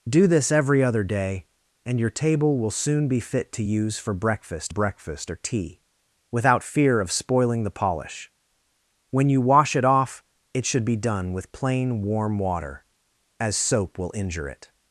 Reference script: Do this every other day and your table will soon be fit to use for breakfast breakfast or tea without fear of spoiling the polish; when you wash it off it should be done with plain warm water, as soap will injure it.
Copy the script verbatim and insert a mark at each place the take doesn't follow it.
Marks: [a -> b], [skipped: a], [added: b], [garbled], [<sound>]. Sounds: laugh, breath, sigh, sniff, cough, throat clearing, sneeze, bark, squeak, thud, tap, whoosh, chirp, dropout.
Do this every other day and your table will soon be fit to use for breakfast breakfast or tea without fear of spoiling the polish; when you wash it off it should be done with plain warm water, as soap will injure it.